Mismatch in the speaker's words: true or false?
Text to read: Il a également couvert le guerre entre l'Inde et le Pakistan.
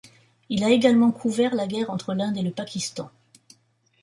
true